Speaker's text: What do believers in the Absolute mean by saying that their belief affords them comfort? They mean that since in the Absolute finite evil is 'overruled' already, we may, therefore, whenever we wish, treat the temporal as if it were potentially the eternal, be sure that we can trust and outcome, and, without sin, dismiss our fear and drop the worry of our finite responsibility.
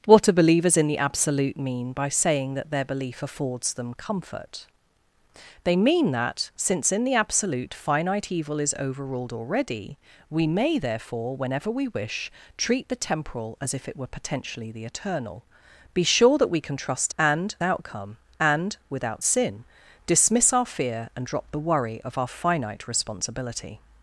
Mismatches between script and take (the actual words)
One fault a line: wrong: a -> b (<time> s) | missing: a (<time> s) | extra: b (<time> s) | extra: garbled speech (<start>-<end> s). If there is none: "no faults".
no faults